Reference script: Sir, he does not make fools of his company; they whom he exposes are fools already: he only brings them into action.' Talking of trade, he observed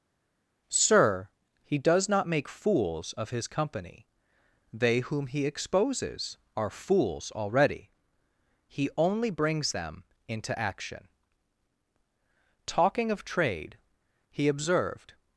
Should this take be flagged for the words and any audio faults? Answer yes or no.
no